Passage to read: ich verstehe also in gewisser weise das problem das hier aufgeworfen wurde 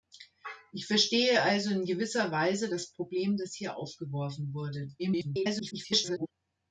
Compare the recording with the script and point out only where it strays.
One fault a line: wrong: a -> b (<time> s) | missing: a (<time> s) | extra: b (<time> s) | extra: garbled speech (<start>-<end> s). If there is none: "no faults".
extra: garbled speech (5.0-6.3 s)